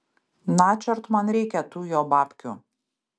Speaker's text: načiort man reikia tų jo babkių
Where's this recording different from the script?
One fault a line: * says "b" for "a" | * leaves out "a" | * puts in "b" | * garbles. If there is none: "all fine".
all fine